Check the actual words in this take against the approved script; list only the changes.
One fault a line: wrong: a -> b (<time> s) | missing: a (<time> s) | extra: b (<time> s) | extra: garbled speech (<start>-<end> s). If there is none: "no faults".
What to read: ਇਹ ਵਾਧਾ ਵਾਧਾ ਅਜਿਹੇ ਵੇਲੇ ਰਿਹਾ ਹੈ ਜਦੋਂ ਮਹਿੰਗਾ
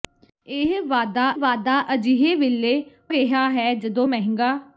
no faults